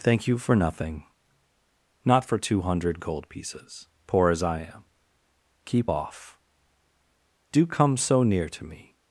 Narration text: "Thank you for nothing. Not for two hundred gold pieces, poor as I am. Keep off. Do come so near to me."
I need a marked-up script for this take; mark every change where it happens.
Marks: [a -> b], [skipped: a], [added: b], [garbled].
"Thank you for nothing. Not for two hundred gold pieces, poor as I am. Keep off. Do come so near to me."